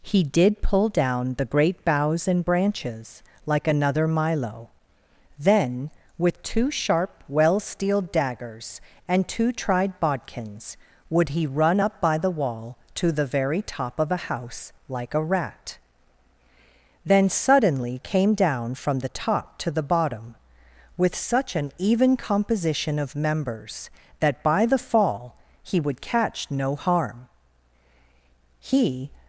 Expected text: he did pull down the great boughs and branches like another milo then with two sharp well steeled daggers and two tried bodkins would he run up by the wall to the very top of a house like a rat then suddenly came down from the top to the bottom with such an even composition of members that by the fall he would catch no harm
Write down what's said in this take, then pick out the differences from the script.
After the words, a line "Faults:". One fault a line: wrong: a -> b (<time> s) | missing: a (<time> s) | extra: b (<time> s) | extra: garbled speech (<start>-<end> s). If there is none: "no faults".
he did pull down the great boughs and branches like another milo then with two sharp well steeled daggers and two tried bodkins would he run up by the wall to the very top of a house like a rat then suddenly came down from the top to the bottom with such an even composition of members that by the fall he would catch no harm he
Faults:
extra: he (28.6 s)